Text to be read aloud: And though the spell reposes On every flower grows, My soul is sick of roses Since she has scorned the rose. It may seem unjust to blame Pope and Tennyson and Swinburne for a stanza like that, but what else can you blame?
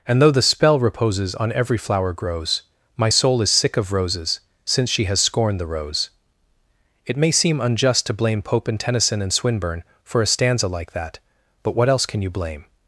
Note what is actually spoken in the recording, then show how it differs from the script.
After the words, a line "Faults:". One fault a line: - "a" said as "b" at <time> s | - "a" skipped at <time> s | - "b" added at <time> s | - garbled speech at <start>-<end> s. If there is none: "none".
And though the spell reposes On every flower grows, My soul is sick of roses Since she has scorned the rose. It may seem unjust to blame Pope and Tennyson and Swinburne for a stanza like that, but what else can you blame?
Faults:
none